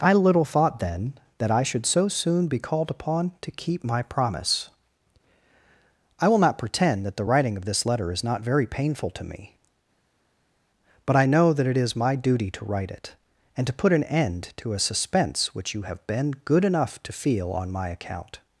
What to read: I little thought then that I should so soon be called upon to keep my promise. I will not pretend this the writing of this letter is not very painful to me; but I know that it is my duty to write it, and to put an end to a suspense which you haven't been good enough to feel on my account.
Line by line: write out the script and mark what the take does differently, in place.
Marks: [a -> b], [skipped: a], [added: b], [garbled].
I little thought then that I should so soon be called upon to keep my promise. I will not pretend [this -> that] the writing of this letter is not very painful to me; but I know that it is my duty to write it, and to put an end to a suspense which you [haven't -> have] been good enough to feel on my account.